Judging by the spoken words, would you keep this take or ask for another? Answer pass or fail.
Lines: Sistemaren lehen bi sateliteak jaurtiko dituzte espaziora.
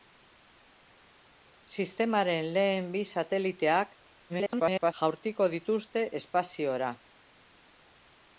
fail